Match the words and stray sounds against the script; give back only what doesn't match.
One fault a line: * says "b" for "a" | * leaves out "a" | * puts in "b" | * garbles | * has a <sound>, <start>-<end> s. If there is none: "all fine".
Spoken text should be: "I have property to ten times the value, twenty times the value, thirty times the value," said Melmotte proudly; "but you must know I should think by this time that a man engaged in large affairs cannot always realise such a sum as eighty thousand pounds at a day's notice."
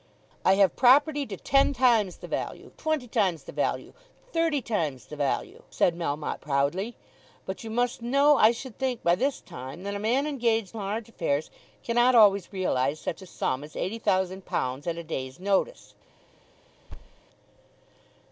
* leaves out "in"
* has a thud, 16.9-17.2 s